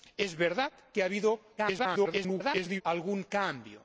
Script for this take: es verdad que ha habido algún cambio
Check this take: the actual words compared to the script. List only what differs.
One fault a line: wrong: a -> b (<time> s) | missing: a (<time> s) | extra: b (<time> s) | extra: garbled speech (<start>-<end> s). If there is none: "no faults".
extra: garbled speech (1.6-2.8 s)